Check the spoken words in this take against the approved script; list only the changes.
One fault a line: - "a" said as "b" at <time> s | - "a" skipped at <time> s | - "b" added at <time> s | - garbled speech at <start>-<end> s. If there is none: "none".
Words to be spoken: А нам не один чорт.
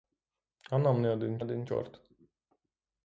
- "один" added at 1.4 s